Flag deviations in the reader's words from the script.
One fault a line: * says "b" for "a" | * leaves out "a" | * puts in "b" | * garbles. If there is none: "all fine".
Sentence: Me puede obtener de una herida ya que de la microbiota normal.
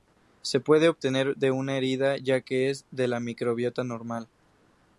* says "Se" for "Me"
* puts in "es"